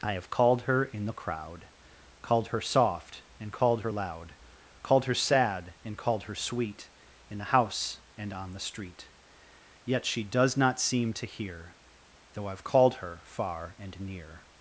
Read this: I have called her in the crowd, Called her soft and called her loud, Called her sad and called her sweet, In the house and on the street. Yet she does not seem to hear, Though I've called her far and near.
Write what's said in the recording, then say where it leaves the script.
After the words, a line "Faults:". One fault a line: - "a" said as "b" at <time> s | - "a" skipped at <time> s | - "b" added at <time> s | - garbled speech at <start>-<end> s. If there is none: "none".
I have called her in the crowd, Called her soft and called her loud, Called her sad and called her sweet, In the house and on the street. Yet she does not seem to hear, Though I've called her far and near.
Faults:
none